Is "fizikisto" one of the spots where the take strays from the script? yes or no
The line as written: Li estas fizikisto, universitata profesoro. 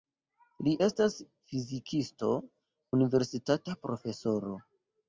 no